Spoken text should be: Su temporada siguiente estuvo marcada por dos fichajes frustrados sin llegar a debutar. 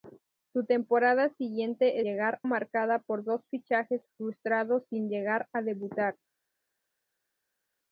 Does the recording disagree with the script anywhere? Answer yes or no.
yes